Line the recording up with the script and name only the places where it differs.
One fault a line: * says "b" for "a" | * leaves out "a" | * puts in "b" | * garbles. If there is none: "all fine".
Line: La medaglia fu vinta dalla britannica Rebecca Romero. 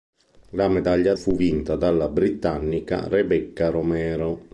all fine